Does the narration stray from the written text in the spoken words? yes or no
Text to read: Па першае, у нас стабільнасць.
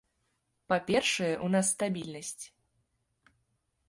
no